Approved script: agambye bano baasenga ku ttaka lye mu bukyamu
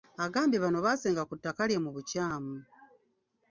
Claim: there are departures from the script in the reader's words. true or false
false